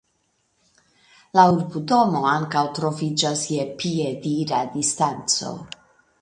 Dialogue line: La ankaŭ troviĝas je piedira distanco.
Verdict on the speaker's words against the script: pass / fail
fail